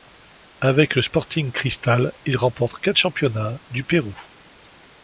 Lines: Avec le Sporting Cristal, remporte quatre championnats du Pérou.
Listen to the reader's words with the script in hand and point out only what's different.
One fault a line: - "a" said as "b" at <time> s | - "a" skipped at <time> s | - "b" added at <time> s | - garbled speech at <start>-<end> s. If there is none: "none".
- "il" added at 2.2 s